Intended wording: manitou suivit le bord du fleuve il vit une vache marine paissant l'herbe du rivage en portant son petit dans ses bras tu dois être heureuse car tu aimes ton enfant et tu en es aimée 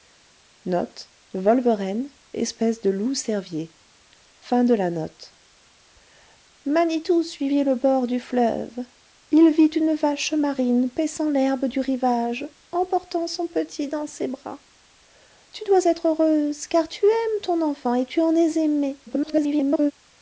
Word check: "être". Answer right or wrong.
right